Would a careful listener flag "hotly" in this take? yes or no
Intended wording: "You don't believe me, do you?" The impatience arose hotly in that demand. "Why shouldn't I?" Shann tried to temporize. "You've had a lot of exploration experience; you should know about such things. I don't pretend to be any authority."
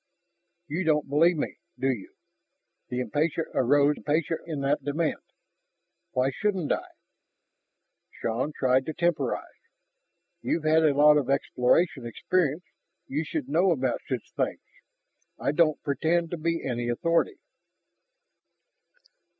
yes